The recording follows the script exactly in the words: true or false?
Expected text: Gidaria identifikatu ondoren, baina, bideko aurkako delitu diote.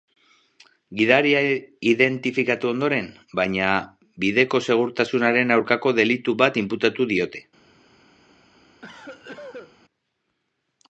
false